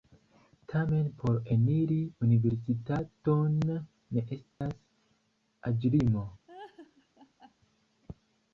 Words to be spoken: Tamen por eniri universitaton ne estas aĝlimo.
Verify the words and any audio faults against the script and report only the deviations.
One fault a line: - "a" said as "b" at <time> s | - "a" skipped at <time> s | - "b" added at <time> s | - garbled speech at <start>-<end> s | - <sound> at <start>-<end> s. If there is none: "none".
- dropout at 4.5-4.6 s
- laugh at 6.5-7.5 s